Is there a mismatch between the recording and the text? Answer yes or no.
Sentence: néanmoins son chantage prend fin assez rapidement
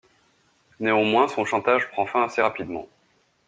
no